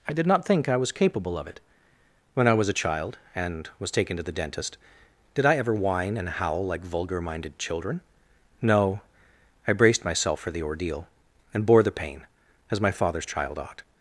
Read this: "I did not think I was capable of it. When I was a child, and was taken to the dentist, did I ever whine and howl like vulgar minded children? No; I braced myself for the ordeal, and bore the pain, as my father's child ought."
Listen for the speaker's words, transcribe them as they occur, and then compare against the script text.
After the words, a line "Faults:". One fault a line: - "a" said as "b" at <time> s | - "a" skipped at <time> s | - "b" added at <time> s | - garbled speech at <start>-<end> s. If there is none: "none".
"I did not think I was capable of it. When I was a child, and was taken to the dentist, did I ever whine and howl like vulgar minded children? No; I braced myself for the ordeal, and bore the pain, as my father's child ought."
Faults:
none